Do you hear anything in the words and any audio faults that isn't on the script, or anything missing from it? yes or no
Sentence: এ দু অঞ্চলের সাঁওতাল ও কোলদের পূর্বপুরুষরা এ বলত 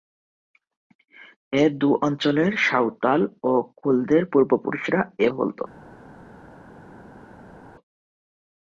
no